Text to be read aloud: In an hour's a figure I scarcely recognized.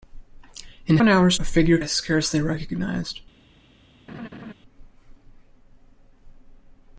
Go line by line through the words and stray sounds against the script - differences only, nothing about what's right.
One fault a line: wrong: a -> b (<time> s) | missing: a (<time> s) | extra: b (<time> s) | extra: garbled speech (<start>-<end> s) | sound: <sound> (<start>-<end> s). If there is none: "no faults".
sound: laugh (4.1-4.5 s)